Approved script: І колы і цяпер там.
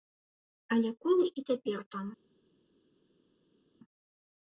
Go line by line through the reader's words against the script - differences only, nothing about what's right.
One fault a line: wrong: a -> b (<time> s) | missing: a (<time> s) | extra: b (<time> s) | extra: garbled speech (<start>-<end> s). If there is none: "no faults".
wrong: І -> Але (0.8 s)